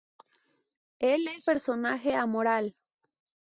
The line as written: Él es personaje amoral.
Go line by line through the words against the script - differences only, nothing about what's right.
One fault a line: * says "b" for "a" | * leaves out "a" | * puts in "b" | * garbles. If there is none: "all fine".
all fine